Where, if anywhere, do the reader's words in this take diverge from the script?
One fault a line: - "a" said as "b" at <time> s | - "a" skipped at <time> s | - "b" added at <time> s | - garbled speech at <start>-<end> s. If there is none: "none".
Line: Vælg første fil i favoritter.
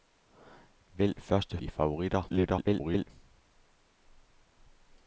- "fil" skipped at 1.6 s
- garbled speech at 2.3-3.1 s